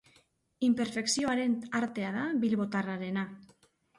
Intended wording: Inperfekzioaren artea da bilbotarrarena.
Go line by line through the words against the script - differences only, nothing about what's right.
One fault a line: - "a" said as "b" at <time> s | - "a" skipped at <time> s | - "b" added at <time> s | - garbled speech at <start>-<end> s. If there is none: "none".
none